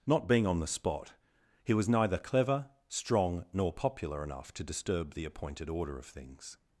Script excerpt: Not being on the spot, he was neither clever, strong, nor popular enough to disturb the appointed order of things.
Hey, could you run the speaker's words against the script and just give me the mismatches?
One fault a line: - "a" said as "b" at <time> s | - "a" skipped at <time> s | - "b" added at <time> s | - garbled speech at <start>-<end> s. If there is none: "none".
none